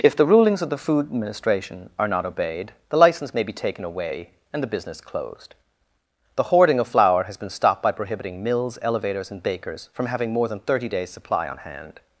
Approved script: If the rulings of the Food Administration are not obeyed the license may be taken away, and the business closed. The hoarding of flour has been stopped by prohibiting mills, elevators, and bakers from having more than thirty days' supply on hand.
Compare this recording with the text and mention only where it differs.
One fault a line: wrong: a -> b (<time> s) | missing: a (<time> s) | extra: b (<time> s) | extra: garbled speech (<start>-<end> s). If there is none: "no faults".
no faults